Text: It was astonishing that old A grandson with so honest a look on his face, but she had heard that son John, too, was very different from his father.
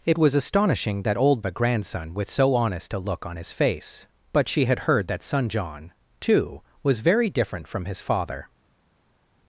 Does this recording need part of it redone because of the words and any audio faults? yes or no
no